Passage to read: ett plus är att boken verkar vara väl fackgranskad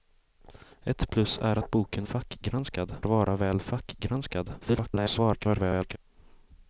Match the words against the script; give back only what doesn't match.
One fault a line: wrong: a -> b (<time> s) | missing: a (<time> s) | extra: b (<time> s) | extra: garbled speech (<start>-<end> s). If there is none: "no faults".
wrong: verkar -> fackgranskad (2.0 s)
extra: garbled speech (4.6-6.0 s)